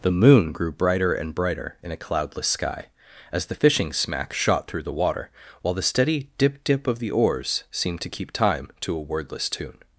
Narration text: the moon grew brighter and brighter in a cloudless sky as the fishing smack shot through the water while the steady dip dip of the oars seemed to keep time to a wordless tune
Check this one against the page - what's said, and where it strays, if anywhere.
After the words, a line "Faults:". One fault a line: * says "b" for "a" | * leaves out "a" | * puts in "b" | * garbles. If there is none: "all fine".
the moon grew brighter and brighter in a cloudless sky as the fishing smack shot through the water while the steady dip dip of the oars seemed to keep time to a wordless tune
Faults:
all fine